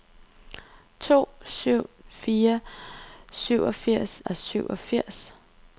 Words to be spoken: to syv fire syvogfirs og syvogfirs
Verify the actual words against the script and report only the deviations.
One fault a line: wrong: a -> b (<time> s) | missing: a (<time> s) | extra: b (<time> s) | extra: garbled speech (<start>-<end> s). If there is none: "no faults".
no faults